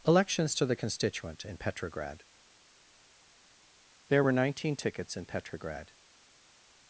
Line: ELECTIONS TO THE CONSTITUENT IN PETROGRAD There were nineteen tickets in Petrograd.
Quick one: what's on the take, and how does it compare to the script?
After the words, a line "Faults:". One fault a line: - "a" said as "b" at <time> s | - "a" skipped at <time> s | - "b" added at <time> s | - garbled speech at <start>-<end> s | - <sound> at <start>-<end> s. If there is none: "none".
ELECTIONS TO THE CONSTITUENT IN PETROGRAD There were nineteen tickets in Petrograd.
Faults:
none